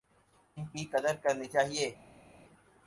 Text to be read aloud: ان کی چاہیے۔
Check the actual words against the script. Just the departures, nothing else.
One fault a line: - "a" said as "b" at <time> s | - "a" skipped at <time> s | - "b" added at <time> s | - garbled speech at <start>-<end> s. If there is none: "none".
- "قدر کرنی" added at 0.9 s